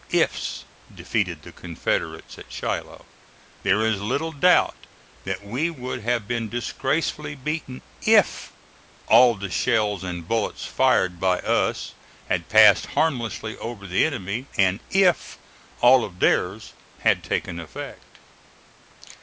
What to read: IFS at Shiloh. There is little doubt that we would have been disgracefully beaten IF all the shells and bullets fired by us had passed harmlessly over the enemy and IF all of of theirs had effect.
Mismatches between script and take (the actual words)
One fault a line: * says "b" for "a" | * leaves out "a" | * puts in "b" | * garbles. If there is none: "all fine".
* puts in "defeated the Confederates"
* leaves out "of"
* puts in "taken"